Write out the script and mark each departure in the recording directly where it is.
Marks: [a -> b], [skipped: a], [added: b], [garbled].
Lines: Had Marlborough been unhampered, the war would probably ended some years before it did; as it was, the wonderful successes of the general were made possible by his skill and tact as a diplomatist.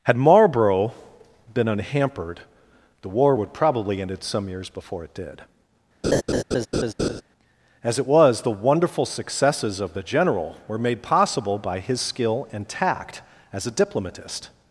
Had Marlborough been unhampered, the war would probably ended some years before it did; as it was, the wonderful successes of the general were made possible by his skill and tact as a diplomatist.